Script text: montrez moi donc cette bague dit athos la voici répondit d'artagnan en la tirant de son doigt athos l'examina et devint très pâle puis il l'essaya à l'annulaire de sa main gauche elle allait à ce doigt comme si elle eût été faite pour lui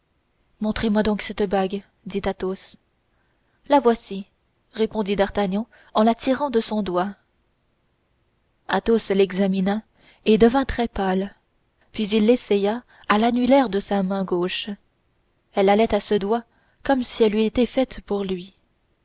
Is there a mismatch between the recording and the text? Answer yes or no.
no